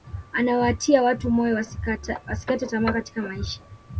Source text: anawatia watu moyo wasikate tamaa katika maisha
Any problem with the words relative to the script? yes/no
no